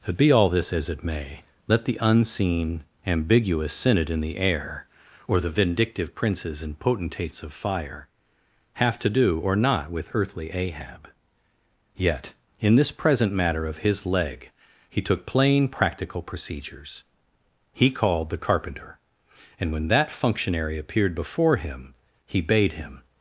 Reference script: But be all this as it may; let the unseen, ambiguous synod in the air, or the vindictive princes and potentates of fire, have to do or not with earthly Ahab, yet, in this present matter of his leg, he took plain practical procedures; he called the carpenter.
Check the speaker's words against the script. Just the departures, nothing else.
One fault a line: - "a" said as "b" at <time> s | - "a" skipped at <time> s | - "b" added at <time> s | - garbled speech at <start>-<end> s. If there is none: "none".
- "And when that functionary appeared before him he bade him" added at 19.6 s